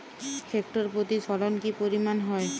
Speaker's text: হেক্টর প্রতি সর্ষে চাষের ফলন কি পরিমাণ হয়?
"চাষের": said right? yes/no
no